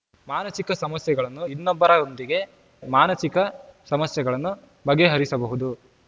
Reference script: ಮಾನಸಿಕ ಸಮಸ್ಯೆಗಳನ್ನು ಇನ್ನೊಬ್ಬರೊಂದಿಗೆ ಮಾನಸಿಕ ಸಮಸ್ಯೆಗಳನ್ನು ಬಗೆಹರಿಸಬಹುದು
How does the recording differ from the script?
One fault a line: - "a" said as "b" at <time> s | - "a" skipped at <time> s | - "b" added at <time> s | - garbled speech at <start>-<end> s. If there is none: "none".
none